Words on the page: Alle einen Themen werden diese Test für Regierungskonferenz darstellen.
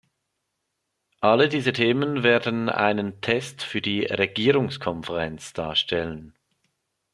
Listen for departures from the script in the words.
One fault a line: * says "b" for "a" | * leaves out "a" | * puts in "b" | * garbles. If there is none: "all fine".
* says "diese" for "einen"
* says "einen" for "diese"
* puts in "die"